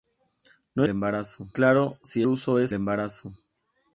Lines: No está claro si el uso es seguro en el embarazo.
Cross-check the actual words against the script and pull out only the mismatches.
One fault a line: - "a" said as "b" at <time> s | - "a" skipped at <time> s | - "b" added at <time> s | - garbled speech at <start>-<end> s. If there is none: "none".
- "está" said as "embarazo" at 0.9 s
- "el" skipped at 2.2 s
- "seguro en el" skipped at 2.7 s